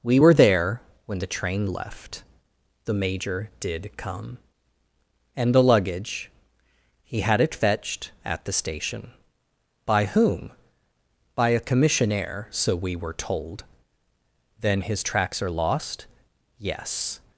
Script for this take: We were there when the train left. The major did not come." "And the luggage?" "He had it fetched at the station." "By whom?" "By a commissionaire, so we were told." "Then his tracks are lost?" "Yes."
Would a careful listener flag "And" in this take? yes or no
no